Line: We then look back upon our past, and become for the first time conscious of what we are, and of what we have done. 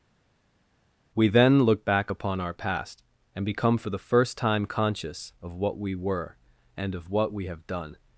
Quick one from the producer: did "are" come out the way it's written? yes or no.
no